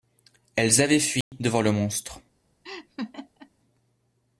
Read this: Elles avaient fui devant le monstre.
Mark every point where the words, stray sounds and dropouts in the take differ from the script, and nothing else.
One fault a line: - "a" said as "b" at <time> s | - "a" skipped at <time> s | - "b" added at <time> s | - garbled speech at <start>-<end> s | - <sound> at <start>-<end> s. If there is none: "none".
- dropout at 1.2-1.3 s
- laugh at 2.6-3.5 s